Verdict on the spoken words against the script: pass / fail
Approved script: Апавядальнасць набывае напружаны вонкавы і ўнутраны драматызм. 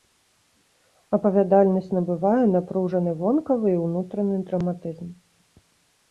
pass